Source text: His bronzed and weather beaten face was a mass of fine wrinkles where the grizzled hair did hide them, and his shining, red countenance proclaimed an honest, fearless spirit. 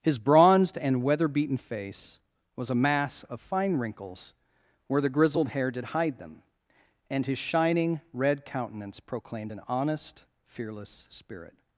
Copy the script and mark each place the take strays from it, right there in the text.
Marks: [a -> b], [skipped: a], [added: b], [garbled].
His bronzed and weather beaten face was a mass of fine wrinkles where the grizzled hair did hide them, and his shining, red countenance proclaimed an honest, fearless spirit.